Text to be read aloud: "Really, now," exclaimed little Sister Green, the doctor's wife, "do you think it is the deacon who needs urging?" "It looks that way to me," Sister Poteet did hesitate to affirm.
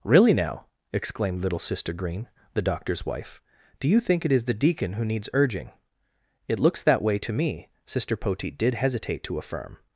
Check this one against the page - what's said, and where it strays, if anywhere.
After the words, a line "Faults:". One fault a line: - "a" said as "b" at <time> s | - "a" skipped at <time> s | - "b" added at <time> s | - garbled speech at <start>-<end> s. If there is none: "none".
"Really, now," exclaimed little Sister Green, the doctor's wife, "do you think it is the deacon who needs urging?" "It looks that way to me," Sister Poteet did hesitate to affirm.
Faults:
none